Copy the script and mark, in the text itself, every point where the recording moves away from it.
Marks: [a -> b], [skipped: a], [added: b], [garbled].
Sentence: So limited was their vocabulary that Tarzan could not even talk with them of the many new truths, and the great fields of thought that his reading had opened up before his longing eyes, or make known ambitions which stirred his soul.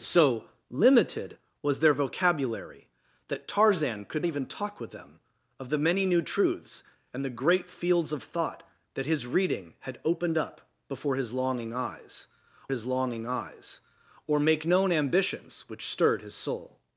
So limited was their vocabulary that Tarzan could [skipped: not] even talk with them of the many new truths, and the great fields of thought that his reading had opened up before his longing eyes, [added: his longing eyes] or make known ambitions which stirred his soul.